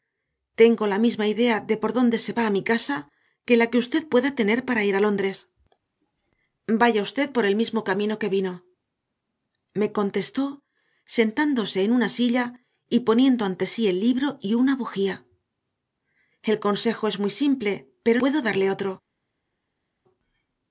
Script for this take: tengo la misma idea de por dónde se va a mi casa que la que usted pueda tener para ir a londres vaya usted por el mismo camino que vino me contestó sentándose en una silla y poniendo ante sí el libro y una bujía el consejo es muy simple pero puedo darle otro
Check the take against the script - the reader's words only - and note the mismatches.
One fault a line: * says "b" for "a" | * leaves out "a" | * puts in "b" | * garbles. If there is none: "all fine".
all fine